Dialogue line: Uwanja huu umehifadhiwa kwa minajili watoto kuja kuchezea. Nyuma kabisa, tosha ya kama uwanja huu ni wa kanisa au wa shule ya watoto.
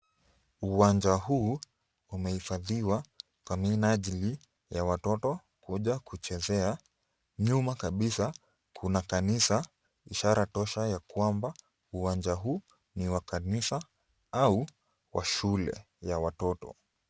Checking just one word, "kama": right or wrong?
wrong